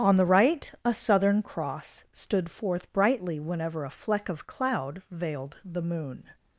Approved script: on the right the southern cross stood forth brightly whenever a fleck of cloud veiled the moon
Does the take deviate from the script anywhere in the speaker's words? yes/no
yes